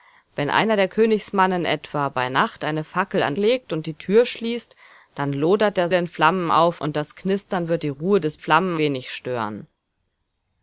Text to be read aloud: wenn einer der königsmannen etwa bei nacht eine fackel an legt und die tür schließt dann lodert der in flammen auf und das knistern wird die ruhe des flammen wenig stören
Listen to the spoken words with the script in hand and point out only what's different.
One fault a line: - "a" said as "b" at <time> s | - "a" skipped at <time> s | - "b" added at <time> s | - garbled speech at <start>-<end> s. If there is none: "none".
none